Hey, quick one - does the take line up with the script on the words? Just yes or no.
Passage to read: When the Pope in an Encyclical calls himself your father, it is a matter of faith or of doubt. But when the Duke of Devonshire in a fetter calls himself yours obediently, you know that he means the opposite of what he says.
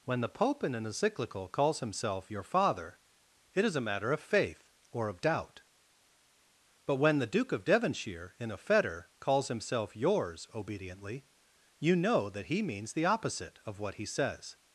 yes